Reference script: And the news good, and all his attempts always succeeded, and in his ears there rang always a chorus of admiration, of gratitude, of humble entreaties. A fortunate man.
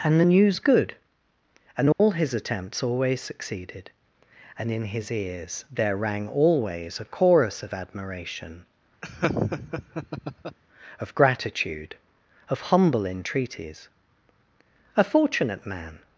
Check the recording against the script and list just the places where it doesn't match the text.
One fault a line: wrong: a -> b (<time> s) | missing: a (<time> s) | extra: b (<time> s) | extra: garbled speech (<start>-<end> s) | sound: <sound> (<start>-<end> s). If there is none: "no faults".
sound: dropout (1.9-2.0 s)
sound: laugh (9.0-10.6 s)